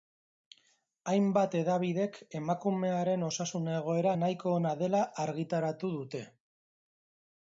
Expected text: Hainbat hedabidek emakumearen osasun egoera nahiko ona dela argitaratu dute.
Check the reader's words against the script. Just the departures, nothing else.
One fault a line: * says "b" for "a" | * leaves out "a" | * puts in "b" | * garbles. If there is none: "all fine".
all fine